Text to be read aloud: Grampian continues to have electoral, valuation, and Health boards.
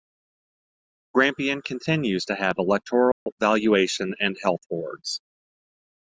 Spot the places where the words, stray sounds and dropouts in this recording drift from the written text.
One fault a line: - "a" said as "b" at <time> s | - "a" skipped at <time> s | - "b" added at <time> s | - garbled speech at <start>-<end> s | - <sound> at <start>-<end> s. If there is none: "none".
- dropout at 3.1-3.3 s